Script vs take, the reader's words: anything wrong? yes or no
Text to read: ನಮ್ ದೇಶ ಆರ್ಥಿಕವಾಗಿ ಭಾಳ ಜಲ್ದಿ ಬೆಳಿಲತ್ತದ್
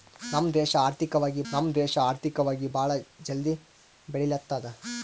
yes